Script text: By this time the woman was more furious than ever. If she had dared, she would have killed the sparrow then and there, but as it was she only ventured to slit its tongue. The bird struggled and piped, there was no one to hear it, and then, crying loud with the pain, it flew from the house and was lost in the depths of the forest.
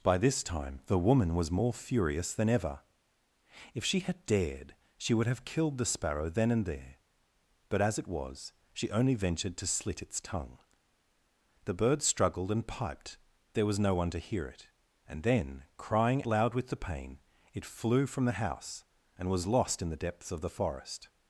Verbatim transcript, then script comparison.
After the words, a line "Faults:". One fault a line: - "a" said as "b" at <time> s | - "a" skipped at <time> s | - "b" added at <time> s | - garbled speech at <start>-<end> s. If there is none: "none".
By this time the woman was more furious than ever. If she had dared, she would have killed the sparrow then and there, but as it was she only ventured to slit its tongue. The bird struggled and piped, there was no one to hear it, and then, crying loud with the pain, it flew from the house and was lost in the depths of the forest.
Faults:
none